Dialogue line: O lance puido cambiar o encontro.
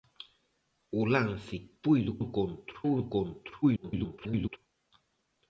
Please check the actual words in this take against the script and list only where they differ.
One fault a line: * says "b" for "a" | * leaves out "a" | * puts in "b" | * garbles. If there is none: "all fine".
* says "encontro" for "cambiar"
* garbles